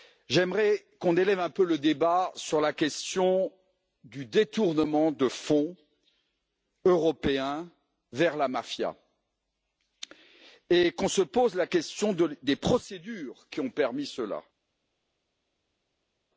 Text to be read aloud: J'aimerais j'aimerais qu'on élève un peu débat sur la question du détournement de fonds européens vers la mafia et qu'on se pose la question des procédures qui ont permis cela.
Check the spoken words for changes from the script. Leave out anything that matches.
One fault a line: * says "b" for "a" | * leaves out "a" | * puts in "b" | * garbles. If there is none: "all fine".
* leaves out "j'aimerais"
* puts in "le"